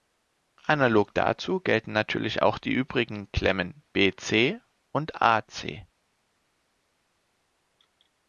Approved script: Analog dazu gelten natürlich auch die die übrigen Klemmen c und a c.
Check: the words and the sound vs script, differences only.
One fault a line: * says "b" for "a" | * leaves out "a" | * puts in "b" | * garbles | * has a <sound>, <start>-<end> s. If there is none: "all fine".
* leaves out "die"
* puts in "b"